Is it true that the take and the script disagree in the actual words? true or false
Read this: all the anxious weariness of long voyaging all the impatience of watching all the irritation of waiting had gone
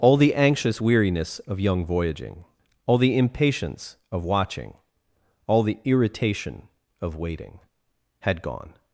true